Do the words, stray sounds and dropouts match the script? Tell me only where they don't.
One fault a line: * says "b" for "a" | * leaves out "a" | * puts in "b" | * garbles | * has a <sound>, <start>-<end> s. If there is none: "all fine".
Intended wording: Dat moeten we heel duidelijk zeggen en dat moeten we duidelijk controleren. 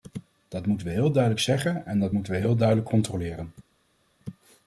* puts in "heel"